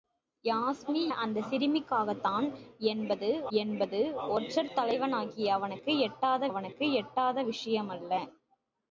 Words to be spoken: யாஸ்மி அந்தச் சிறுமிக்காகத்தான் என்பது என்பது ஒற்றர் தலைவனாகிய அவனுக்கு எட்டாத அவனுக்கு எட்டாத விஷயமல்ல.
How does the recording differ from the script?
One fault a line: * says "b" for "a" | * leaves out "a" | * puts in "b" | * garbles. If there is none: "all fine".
all fine